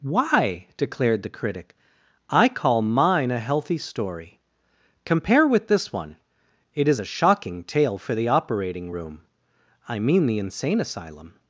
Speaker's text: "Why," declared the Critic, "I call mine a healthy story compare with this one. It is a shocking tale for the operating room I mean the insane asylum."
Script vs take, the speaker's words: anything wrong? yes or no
no